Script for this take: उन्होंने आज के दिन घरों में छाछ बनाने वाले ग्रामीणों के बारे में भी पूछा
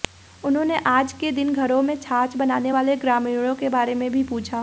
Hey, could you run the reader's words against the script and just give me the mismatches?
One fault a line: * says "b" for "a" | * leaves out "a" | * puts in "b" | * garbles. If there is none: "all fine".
all fine